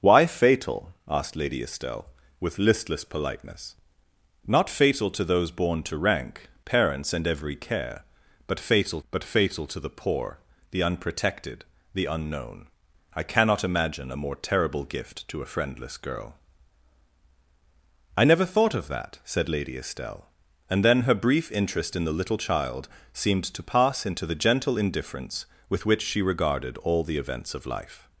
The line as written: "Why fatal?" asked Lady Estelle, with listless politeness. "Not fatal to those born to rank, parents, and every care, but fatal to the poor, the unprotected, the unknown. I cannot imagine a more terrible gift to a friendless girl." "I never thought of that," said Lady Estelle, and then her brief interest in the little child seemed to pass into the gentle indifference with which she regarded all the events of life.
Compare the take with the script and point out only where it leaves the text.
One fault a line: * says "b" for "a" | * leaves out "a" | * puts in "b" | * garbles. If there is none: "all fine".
* puts in "but fatal"